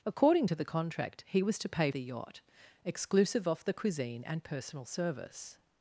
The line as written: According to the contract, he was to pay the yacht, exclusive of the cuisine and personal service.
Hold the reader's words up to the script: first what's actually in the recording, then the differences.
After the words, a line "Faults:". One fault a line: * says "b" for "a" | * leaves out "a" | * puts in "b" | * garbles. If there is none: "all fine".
According to the contract, he was to pay the yacht, exclusive of the cuisine and personal service.
Faults:
all fine